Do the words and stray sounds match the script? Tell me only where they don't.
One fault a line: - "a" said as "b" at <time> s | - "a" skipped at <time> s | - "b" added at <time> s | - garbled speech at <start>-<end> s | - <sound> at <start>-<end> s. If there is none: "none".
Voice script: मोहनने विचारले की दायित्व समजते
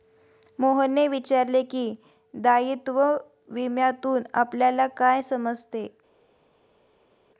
- "विम्यातून आपल्याला काय" added at 3.5 s